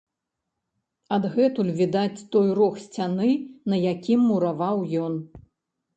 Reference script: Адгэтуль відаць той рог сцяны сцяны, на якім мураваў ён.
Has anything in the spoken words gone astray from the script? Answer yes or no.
yes